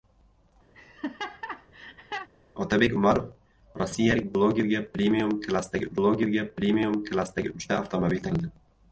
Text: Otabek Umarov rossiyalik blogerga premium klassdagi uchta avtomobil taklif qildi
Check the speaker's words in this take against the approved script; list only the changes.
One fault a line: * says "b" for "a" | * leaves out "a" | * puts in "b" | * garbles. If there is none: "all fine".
* puts in "blogerga premium klassdagi"
* leaves out "taklif"